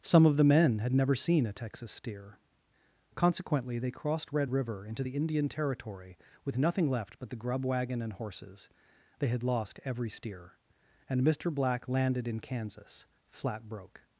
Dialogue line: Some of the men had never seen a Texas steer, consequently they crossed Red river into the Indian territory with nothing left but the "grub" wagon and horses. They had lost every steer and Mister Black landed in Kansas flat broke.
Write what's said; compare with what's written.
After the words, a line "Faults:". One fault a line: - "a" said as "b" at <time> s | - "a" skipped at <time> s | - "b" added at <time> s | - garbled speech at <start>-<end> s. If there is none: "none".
Some of the men had never seen a Texas steer, consequently they crossed Red river into the Indian territory with nothing left but the "grub" wagon and horses. They had lost every steer and Mister Black landed in Kansas flat broke.
Faults:
none